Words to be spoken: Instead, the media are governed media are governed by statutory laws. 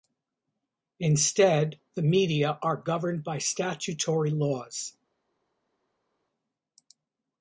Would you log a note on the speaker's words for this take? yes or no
yes